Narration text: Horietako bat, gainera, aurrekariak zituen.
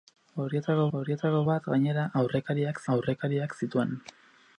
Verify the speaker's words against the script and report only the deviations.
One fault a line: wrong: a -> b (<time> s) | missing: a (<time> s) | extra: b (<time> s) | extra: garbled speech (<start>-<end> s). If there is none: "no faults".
extra: horietako (1.0 s)
extra: aurrekariak (3.0 s)